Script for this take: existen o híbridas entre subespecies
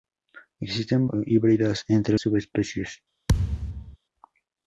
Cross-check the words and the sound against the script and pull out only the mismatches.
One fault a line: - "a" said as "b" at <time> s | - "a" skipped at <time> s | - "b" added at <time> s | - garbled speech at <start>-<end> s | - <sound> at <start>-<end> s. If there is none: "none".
- thud at 3.3-4.0 s